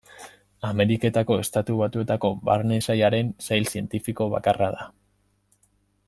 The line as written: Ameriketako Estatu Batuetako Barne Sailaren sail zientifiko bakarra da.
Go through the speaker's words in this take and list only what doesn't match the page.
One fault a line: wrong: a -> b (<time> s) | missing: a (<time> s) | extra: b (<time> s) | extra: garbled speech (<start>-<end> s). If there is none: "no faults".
no faults